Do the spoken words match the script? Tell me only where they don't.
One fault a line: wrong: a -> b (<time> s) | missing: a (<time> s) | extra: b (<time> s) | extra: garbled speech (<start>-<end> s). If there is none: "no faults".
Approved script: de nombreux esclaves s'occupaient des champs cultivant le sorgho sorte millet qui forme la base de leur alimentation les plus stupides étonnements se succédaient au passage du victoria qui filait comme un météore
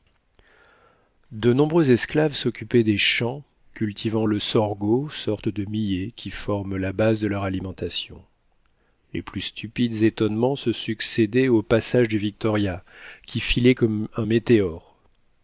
extra: de (5.5 s)